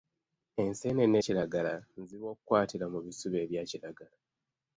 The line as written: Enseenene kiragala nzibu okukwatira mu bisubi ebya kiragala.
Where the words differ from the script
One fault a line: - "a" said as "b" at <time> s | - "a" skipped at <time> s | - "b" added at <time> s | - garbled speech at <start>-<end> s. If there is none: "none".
none